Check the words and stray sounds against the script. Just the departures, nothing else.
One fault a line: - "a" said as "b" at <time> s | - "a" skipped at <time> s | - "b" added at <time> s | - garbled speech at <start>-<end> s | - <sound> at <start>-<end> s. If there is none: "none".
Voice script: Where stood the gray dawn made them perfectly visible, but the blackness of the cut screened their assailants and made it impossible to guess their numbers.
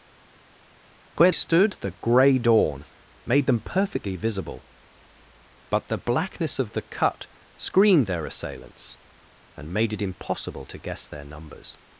none